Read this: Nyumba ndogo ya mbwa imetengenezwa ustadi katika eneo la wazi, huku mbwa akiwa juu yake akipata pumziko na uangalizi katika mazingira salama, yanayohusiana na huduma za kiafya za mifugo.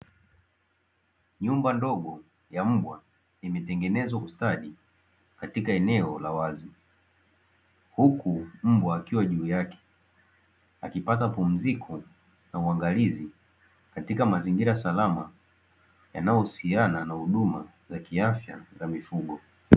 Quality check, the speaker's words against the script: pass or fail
pass